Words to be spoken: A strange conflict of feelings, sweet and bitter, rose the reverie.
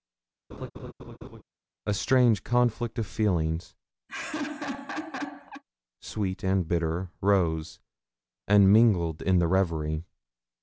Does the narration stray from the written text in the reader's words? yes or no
yes